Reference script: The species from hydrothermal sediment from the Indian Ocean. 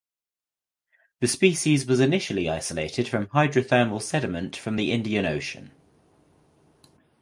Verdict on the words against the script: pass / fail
fail